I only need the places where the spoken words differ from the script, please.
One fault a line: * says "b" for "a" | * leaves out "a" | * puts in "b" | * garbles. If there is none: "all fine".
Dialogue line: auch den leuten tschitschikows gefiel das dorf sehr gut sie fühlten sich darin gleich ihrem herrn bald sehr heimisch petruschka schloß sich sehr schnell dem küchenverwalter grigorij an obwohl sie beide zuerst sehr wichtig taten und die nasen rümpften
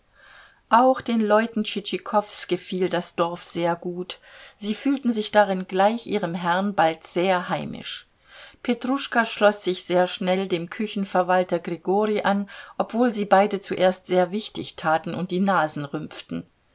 all fine